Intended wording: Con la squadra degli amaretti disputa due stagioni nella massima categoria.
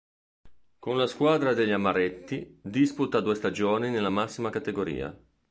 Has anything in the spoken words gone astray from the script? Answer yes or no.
no